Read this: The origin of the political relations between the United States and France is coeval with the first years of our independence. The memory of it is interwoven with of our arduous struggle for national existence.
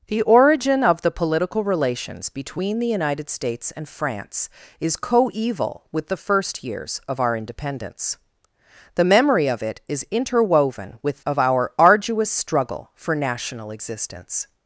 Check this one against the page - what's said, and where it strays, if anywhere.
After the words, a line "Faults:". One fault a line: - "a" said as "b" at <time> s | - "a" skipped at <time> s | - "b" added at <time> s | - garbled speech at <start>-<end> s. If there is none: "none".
The origin of the political relations between the United States and France is coeval with the first years of our independence. The memory of it is interwoven with of our arduous struggle for national existence.
Faults:
none